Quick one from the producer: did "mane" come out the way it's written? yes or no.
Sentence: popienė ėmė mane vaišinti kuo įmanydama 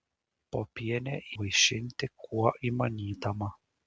no